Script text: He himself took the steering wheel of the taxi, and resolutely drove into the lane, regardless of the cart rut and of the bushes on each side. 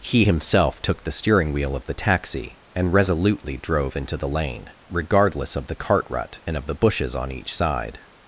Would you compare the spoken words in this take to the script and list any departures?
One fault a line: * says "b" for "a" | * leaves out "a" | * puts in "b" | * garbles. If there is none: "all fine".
all fine